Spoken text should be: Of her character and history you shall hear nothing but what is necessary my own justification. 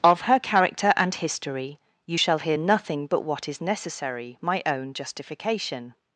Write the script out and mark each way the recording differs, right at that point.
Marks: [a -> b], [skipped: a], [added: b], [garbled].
Of her character and history you shall hear nothing but what is necessary my own justification.